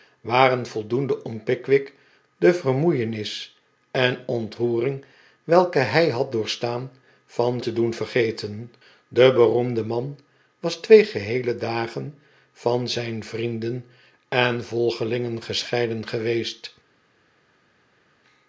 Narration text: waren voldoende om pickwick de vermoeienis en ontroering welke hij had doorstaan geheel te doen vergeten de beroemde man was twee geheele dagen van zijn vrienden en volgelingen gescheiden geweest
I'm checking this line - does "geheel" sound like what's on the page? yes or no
no